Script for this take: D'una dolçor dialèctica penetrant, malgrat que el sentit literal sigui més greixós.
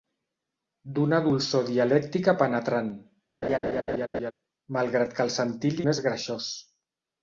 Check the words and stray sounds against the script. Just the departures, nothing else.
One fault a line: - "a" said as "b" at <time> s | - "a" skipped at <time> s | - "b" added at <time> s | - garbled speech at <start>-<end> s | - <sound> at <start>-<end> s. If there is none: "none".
- laugh at 3.4-4.3 s
- "literal sigui" skipped at 5.8 s